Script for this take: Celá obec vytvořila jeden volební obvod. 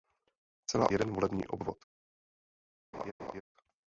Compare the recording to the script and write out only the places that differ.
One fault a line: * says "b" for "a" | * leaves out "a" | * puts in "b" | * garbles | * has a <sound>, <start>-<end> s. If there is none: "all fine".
* leaves out "obec vytvořila"
* has a laugh, 2.9-3.4 s